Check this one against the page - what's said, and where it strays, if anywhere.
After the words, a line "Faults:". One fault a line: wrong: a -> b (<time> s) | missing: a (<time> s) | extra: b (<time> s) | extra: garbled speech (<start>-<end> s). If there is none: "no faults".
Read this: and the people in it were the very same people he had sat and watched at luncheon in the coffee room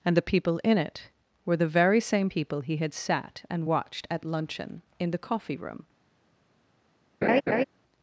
and the people in it were the very same people he had sat and watched at luncheon in the coffee room
Faults:
no faults